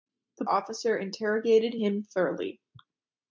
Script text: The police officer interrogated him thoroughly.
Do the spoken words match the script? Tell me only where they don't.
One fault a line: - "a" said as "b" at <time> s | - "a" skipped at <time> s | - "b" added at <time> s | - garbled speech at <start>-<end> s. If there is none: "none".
- "police" skipped at 0.5 s